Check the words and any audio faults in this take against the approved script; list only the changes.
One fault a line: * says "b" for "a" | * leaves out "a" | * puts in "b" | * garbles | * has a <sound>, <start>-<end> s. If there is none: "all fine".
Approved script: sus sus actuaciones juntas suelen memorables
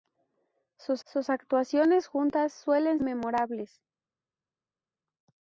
all fine